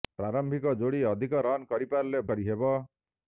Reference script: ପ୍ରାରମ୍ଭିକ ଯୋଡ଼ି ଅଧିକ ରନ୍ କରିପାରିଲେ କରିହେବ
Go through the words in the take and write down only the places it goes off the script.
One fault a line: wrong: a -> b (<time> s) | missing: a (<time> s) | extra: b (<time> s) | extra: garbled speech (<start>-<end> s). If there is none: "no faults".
no faults